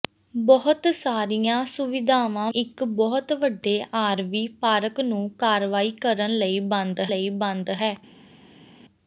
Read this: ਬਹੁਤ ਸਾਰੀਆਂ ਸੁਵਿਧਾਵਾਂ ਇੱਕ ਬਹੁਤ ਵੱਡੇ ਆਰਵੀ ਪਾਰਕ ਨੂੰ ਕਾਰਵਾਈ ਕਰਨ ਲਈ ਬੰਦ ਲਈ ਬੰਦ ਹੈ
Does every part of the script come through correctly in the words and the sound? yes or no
yes